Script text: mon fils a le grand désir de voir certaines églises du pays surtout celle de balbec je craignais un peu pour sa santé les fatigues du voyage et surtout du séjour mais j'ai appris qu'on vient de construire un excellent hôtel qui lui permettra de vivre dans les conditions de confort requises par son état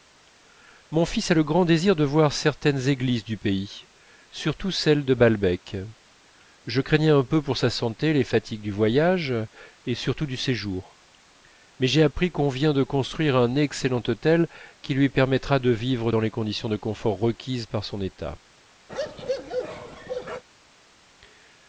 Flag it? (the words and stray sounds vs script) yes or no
yes